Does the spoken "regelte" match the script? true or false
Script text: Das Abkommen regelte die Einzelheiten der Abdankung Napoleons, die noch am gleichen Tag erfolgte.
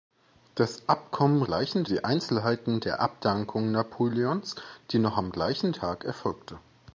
false